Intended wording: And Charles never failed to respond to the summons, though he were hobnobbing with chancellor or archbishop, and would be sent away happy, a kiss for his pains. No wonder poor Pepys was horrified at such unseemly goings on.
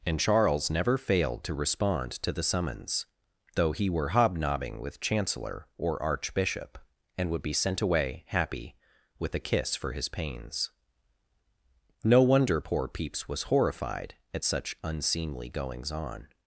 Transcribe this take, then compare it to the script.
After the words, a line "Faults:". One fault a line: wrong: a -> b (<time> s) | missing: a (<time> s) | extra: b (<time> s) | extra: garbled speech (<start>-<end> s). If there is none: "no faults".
And Charles never failed to respond to the summons, though he were hobnobbing with chancellor or archbishop, and would be sent away happy, with a kiss for his pains. No wonder poor Pepys was horrified at such unseemly goings on.
Faults:
extra: with (9.2 s)